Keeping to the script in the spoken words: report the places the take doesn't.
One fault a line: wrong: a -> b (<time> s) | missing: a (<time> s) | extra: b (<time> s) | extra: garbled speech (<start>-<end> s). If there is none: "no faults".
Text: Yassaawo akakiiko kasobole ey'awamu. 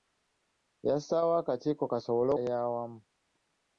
no faults